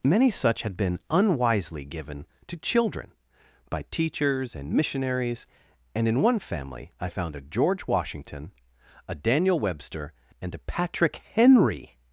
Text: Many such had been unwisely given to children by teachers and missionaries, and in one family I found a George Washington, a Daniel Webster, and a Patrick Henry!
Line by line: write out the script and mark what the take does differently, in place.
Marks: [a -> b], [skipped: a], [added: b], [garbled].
Many such had been unwisely given to children by teachers and missionaries, and in one family I found a George Washington, a Daniel Webster, and a Patrick Henry!